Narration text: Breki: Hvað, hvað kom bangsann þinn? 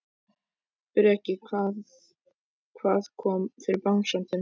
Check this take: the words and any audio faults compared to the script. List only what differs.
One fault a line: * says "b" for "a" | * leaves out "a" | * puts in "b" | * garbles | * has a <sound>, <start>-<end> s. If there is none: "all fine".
* puts in "fyrir"